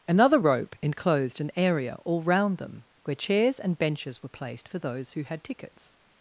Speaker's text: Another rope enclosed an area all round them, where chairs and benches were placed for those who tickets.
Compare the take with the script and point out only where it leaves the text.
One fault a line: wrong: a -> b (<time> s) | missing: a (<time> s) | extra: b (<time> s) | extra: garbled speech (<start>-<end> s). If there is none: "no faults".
extra: had (5.2 s)